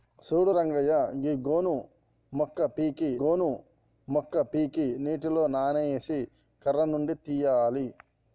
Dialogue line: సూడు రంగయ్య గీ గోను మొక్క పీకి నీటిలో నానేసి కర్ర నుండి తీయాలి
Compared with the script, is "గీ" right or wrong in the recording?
right